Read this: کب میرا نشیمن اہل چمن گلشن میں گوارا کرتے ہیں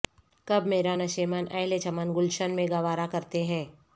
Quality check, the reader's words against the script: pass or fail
pass